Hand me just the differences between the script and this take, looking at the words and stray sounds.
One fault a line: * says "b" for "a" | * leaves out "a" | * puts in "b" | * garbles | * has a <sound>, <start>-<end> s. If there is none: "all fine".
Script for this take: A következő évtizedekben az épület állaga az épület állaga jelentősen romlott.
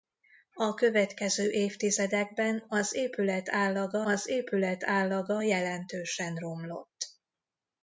all fine